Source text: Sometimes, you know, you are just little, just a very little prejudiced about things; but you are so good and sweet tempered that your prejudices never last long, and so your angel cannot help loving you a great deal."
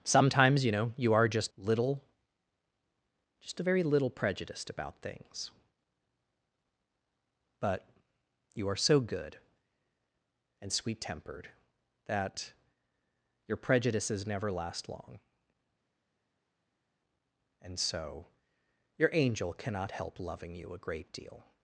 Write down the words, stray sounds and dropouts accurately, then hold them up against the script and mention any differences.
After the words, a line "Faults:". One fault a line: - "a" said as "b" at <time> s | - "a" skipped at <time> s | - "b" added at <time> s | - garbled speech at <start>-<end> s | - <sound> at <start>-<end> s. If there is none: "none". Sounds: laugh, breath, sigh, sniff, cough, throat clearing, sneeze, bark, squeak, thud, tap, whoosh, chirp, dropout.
Sometimes, you know, you are just little, just a very little prejudiced about things; but you are so good and sweet tempered that your prejudices never last long, and so your angel cannot help loving you a great deal."
Faults:
none